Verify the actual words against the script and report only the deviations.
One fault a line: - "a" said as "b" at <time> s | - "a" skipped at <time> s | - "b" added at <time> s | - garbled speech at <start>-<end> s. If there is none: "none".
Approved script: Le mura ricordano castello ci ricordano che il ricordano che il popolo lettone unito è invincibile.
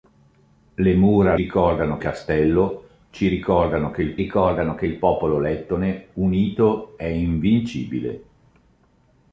none